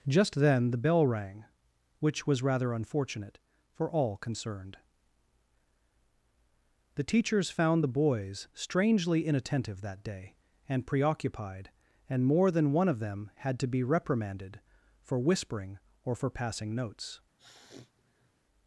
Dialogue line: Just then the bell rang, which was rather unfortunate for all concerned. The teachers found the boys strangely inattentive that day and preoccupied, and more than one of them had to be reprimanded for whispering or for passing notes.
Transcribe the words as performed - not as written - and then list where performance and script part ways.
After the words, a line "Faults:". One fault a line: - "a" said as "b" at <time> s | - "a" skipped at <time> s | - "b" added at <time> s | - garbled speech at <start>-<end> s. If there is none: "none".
Just then the bell rang, which was rather unfortunate for all concerned. The teachers found the boys strangely inattentive that day and preoccupied, and more than one of them had to be reprimanded for whispering or for passing notes.
Faults:
none